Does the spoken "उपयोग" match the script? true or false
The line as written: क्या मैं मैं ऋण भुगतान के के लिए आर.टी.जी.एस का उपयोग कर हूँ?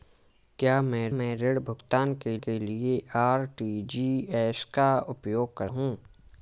true